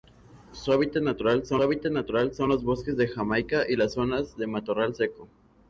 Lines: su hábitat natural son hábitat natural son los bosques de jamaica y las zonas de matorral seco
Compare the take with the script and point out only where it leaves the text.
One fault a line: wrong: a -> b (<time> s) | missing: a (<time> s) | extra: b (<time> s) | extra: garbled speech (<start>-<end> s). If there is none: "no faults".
no faults